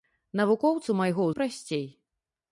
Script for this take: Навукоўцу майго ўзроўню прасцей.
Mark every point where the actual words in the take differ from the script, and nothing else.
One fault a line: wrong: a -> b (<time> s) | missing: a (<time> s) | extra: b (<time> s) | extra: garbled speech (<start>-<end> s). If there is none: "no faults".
missing: ўзроўню (1.3 s)